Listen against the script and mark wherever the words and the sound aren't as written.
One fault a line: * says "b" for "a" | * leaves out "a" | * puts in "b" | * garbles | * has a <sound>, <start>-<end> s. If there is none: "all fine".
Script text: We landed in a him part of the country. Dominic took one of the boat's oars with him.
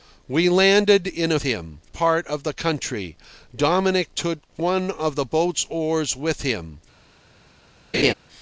* has a laugh, 7.9-8.1 s